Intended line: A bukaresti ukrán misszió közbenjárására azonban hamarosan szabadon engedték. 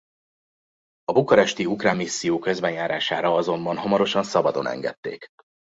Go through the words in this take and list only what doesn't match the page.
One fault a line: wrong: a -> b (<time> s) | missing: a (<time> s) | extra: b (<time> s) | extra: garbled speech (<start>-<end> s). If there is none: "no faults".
no faults